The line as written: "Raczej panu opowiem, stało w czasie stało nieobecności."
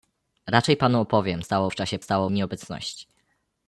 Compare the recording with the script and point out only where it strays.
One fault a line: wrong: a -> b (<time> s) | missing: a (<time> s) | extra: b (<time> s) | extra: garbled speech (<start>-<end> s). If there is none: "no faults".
no faults